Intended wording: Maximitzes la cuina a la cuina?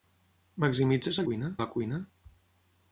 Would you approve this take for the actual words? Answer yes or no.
yes